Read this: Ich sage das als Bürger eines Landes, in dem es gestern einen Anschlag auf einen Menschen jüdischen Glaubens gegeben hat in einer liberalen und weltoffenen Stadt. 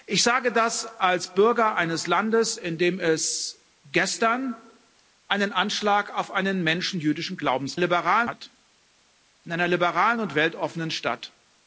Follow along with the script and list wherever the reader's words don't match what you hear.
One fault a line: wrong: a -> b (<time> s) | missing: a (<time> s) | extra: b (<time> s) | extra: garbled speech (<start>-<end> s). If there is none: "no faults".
wrong: gegeben -> liberalen (7.8 s)